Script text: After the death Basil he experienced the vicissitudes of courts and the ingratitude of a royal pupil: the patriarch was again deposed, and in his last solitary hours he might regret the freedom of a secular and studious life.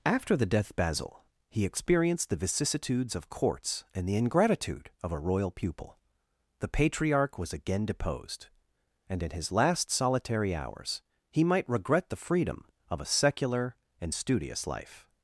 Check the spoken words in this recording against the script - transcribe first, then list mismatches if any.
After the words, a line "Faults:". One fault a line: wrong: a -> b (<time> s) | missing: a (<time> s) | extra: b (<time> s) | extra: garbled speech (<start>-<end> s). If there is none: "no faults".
After the death Basil he experienced the vicissitudes of courts and the ingratitude of a royal pupil: the patriarch was again deposed, and in his last solitary hours he might regret the freedom of a secular and studious life.
Faults:
no faults